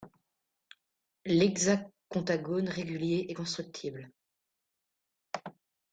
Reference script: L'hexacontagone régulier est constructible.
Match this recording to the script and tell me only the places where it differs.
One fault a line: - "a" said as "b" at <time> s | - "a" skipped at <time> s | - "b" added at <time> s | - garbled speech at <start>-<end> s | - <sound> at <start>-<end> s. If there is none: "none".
none